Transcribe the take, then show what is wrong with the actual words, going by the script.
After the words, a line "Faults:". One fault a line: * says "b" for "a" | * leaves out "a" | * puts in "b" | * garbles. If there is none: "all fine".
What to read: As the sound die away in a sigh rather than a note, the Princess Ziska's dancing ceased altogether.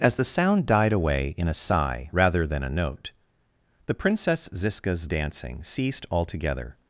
As the sound died away in a sigh rather than a note, the Princess Ziska's dancing ceased altogether.
Faults:
* says "died" for "die"